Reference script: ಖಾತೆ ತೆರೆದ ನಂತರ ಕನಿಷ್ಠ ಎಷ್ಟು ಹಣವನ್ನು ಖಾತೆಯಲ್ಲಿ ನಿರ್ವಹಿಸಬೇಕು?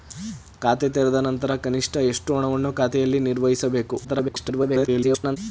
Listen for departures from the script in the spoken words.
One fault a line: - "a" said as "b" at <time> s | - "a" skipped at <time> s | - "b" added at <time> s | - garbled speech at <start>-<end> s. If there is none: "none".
- garbled speech at 4.0-5.4 s